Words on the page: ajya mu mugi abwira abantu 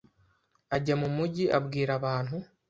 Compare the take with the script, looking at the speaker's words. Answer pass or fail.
pass